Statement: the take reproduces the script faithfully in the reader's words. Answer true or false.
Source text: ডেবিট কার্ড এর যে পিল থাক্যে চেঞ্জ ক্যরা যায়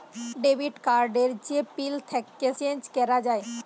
true